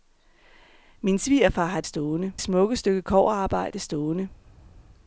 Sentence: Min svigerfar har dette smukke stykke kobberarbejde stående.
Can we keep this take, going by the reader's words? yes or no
no